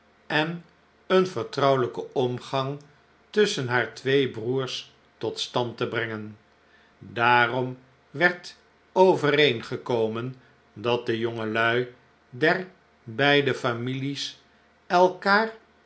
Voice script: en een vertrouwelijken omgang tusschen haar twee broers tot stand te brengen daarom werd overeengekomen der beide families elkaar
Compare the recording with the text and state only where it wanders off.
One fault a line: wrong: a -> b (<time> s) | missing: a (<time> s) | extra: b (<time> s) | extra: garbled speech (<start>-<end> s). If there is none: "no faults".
extra: dat de jongelui (10.7 s)